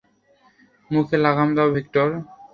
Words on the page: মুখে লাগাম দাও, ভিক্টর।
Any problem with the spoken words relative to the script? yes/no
no